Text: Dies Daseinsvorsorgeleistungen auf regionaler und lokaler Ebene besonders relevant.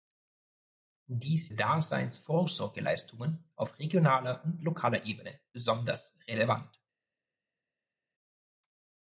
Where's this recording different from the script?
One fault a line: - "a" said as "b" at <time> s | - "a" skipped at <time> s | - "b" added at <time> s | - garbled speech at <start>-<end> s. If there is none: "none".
none